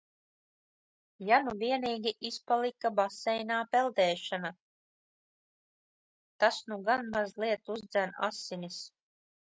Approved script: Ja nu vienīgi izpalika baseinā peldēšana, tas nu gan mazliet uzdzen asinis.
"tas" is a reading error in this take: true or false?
false